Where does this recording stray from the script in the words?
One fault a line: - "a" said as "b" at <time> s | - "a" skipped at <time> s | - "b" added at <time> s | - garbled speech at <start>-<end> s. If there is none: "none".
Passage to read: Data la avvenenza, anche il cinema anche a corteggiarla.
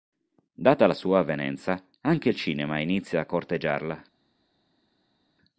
- "sua" added at 0.9 s
- "anche" said as "inizia" at 2.8 s